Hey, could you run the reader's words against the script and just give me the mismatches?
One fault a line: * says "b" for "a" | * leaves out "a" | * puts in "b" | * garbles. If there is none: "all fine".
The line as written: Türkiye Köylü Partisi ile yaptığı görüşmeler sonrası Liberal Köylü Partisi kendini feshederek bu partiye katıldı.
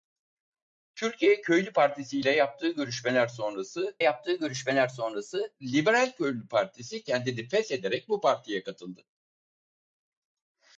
* puts in "yaptığı görüşmeler sonrası"